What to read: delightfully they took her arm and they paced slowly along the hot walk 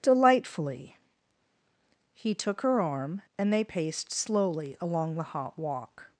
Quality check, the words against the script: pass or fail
fail